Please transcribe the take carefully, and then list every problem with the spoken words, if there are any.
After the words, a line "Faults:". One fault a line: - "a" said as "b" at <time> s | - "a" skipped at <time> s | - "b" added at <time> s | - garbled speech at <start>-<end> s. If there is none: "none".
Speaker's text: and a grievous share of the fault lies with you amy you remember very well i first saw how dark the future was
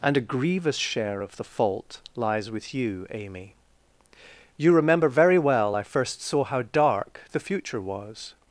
and a grievous share of the fault lies with you amy you remember very well i first saw how dark the future was
Faults:
none